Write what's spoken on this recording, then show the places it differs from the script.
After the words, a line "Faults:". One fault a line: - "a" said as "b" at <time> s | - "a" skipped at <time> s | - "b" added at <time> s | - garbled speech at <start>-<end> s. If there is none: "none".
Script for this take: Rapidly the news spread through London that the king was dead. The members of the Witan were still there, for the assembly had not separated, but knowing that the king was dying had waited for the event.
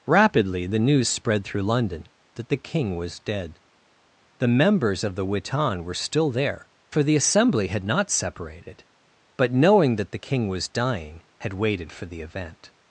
Rapidly the news spread through London that the king was dead. The members of the Witan were still there, for the assembly had not separated, but knowing that the king was dying had waited for the event.
Faults:
none